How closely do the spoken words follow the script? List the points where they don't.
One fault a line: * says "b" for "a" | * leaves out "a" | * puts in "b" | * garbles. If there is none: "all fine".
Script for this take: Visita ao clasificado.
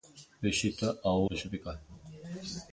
all fine